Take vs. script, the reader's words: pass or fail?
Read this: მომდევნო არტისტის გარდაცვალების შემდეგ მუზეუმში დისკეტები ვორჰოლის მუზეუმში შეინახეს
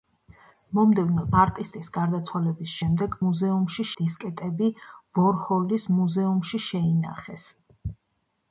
pass